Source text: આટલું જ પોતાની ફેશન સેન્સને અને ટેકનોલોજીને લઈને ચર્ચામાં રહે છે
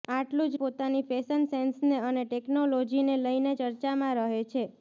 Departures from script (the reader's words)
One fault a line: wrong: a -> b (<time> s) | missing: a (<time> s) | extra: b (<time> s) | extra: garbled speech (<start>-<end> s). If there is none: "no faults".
no faults